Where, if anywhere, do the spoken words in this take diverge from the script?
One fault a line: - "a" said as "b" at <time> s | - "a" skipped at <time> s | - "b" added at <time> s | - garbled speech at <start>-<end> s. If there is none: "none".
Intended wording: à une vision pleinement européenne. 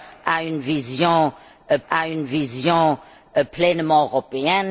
- "à une vision" added at 1.9 s